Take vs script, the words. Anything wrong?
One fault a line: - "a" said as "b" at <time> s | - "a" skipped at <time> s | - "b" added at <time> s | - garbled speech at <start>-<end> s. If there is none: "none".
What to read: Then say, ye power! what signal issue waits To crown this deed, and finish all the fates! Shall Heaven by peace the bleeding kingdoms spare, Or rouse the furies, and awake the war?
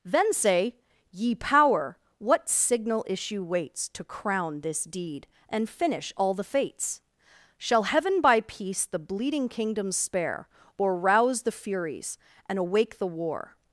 none